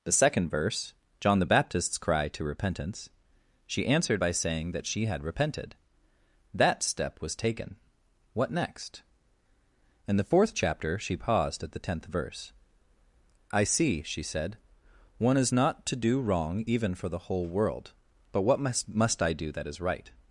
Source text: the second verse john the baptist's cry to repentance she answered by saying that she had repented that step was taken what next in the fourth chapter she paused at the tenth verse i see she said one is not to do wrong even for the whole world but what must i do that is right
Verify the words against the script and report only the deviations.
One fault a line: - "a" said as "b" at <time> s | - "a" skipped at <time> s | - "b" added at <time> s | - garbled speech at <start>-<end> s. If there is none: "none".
- "must" added at 18.9 s